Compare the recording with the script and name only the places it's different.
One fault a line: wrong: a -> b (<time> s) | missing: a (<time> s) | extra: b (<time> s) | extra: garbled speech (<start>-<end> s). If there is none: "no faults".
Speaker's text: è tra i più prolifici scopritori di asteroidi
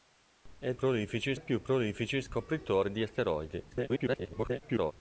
wrong: tra -> prolifici (0.7 s)
extra: garbled speech (3.7-4.9 s)